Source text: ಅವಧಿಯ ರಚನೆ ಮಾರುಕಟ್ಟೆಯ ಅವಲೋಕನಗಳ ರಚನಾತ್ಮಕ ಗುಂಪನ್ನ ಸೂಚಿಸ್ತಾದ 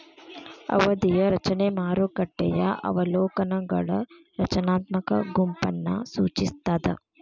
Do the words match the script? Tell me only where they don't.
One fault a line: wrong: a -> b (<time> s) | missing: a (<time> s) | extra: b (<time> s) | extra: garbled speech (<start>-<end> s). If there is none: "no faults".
no faults